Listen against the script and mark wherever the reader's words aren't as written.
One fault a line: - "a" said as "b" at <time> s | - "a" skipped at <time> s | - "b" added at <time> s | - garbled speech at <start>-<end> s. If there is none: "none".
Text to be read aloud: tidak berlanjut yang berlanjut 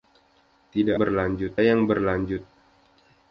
none